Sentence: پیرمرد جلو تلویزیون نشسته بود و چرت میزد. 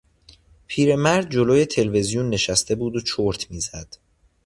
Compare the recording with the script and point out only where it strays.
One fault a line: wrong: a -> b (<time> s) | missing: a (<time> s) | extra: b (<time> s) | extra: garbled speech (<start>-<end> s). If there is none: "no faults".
no faults